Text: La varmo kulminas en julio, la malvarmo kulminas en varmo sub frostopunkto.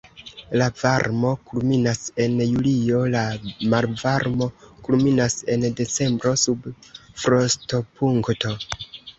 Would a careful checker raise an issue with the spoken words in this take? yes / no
yes